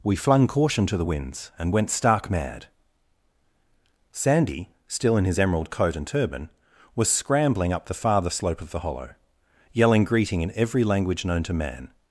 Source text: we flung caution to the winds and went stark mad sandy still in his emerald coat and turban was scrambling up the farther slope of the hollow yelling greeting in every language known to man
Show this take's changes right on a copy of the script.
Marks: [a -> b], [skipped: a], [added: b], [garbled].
we flung caution to the winds and went stark mad sandy still in his emerald coat and turban was scrambling up the farther slope of the hollow yelling greeting in every language known to man